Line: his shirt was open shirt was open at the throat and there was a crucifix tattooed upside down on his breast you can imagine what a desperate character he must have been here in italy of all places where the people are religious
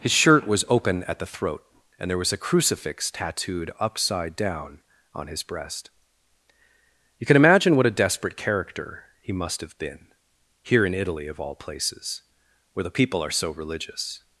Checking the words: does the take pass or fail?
fail